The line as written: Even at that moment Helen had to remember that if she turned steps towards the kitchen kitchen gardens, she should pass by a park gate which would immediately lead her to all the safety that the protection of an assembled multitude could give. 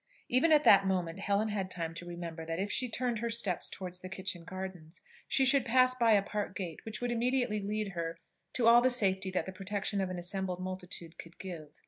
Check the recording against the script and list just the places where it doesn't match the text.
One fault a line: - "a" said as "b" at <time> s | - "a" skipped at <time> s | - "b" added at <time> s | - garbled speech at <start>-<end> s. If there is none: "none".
- "time" added at 1.7 s
- "her" added at 3.2 s
- "kitchen" skipped at 4.4 s